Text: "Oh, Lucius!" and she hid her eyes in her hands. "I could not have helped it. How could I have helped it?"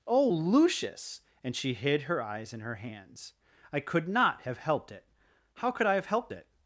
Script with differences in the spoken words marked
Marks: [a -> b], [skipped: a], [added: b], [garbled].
"Oh, Lucius!" and she hid her eyes in her hands. "I could not have helped it. How could I have helped it?"